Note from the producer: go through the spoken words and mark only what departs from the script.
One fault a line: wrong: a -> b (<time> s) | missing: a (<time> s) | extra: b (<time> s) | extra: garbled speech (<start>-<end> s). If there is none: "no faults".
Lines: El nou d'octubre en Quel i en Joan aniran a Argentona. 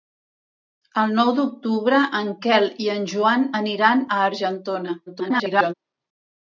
extra: garbled speech (5.1-5.7 s)